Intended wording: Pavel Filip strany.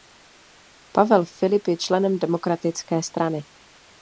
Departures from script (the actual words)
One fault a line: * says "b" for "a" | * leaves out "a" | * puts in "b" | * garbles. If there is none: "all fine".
* puts in "je členem demokratické"